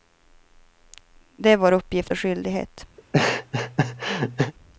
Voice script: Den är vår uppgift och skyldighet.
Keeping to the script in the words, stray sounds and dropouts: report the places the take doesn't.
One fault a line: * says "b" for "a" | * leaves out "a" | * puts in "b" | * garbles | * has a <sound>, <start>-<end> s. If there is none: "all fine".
* says "Det" for "Den"
* has a laugh, 3.0-4.5 s